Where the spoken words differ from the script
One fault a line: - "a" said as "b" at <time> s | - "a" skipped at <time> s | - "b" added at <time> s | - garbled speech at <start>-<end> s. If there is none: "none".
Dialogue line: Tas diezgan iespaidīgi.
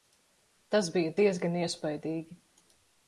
- "bija" added at 0.9 s